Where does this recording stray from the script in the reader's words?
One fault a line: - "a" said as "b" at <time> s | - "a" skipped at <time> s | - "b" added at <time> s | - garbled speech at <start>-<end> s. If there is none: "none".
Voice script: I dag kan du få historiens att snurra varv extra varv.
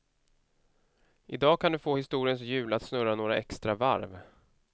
- "hjul" added at 2.4 s
- "varv" said as "några" at 3.2 s